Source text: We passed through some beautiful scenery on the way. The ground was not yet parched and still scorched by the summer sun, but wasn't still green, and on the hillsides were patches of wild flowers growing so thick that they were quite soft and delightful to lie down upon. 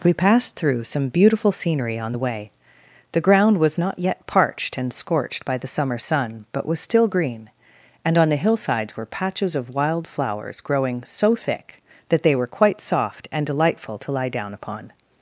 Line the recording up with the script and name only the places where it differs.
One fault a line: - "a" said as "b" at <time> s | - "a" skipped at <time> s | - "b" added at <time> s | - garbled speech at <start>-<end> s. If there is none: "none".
- "still" skipped at 4.9 s
- "wasn't" said as "was" at 6.7 s